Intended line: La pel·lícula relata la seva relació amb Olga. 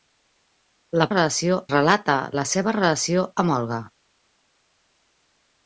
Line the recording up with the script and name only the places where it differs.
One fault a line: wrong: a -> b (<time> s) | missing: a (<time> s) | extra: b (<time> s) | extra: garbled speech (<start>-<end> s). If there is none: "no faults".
wrong: pel·lícula -> relació (1.1 s)